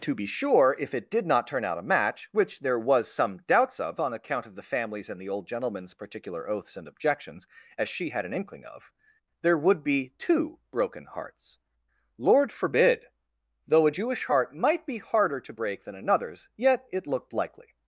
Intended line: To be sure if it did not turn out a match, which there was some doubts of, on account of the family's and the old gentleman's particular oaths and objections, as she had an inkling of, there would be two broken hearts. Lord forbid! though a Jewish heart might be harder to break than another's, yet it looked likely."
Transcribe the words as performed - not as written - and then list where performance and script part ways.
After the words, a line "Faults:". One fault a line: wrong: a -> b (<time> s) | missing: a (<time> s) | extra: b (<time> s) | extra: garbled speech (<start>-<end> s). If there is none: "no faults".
To be sure if it did not turn out a match, which there was some doubts of, on account of the family's and the old gentleman's particular oaths and objections, as she had an inkling of, there would be two broken hearts. Lord forbid! though a Jewish heart might be harder to break than another's, yet it looked likely."
Faults:
no faults